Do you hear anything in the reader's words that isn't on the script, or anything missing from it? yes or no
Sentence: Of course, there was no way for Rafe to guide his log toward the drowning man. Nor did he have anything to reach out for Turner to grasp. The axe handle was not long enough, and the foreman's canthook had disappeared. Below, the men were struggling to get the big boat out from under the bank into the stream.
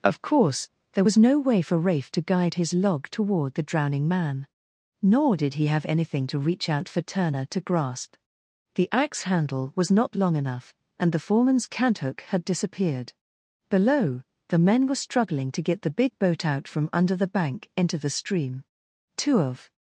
yes